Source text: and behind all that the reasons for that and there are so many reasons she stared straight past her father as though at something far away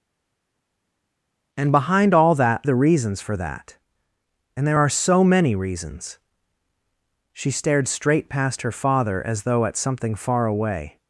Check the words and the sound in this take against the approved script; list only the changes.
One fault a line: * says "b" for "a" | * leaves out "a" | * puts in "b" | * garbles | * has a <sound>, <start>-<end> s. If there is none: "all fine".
all fine